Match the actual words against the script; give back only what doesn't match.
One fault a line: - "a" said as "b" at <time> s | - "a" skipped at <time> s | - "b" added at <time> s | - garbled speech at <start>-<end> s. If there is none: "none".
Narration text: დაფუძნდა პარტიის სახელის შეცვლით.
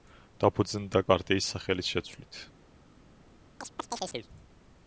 none